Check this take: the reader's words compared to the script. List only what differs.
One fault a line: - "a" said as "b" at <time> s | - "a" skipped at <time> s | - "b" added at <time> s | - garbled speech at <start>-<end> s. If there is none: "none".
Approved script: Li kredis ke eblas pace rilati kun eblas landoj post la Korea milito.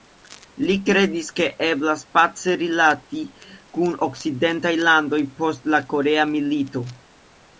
- "eblas" said as "okcidentaj" at 4.1 s